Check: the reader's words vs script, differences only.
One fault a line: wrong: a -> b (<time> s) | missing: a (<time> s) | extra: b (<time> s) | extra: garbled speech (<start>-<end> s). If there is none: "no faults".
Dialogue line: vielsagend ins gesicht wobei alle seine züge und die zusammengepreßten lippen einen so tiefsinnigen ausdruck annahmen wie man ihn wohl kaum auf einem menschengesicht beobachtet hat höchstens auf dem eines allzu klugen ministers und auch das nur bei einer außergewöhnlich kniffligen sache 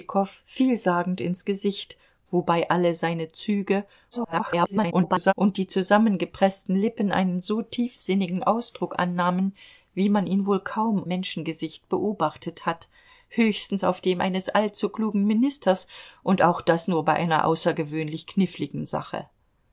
extra: garbled speech (4.1-5.3 s)
missing: auf einem (11.1 s)